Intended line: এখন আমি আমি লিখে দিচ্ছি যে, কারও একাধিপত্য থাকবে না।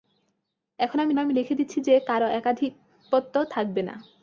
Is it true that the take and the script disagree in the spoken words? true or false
false